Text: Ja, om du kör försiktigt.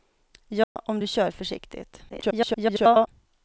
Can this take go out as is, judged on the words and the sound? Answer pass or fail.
fail